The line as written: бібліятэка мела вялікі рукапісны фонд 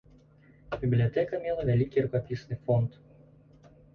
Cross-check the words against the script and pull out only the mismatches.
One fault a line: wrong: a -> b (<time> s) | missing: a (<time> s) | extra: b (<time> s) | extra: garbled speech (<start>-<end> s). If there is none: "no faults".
no faults